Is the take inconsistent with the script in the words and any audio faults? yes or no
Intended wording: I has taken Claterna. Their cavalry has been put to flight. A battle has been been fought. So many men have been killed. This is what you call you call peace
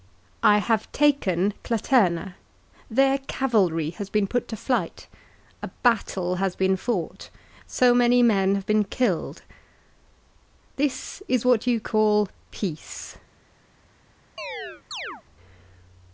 yes